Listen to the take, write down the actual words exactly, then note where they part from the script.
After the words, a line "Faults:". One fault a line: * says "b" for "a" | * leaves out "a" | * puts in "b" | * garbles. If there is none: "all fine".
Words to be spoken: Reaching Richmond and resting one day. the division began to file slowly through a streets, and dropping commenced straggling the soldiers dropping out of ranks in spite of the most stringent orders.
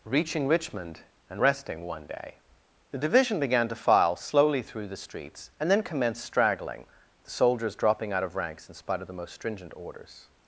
Reaching Richmond and resting one day. the division began to file slowly through the streets, and then commenced straggling the soldiers dropping out of ranks in spite of the most stringent orders.
Faults:
* says "the" for "a"
* says "then" for "dropping"